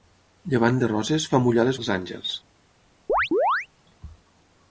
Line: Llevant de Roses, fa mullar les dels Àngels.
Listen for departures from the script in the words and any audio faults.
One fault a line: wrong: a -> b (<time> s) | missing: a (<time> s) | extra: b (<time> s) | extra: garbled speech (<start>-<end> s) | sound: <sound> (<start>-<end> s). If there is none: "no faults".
sound: chirp (3.1-3.7 s)